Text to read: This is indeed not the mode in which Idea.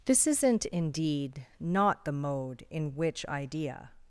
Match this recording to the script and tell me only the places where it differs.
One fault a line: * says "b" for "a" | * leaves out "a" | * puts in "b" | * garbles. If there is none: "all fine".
* says "isn't" for "is"